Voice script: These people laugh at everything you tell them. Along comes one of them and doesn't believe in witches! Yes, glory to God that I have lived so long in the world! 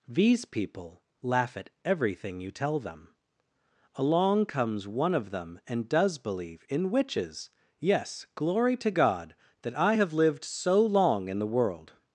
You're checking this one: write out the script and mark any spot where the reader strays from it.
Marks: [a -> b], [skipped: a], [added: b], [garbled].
These people laugh at everything you tell them. Along comes one of them and [doesn't -> does] believe in witches! Yes, glory to God that I have lived so long in the world!